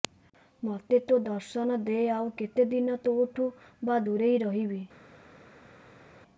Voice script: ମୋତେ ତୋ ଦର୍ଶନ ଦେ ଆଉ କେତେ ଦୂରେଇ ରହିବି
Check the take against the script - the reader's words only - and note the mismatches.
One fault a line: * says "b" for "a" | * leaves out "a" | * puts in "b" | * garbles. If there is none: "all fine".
* puts in "ଦିନ ତୋଠୁ ବା"